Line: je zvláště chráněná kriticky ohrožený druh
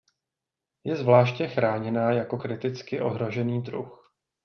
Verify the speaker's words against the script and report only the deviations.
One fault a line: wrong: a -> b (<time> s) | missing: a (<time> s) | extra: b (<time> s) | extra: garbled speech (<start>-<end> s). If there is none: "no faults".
extra: jako (2.1 s)